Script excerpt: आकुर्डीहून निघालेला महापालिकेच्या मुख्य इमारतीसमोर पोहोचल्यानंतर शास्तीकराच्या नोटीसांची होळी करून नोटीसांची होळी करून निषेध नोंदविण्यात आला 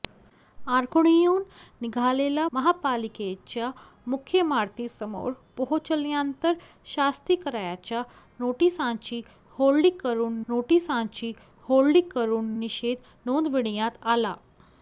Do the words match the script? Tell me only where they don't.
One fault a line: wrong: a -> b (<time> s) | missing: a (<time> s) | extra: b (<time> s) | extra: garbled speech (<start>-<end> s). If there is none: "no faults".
no faults